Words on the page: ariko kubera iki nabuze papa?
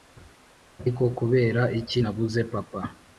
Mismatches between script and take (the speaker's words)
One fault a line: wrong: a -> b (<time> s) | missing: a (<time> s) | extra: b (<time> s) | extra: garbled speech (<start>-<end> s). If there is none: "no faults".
no faults